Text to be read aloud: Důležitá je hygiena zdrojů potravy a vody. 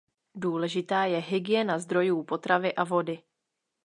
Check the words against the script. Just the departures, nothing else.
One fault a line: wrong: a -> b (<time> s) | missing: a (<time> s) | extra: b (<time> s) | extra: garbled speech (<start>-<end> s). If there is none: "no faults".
no faults